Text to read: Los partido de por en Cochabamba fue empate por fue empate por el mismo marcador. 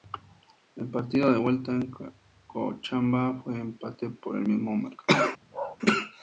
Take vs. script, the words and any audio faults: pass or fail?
fail